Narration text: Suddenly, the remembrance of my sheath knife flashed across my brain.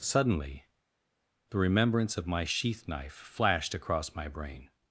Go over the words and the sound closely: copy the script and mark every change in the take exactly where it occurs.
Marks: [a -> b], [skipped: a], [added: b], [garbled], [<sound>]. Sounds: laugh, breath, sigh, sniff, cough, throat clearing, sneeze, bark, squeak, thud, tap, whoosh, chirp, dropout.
Suddenly, the remembrance of my sheath knife flashed across my brain.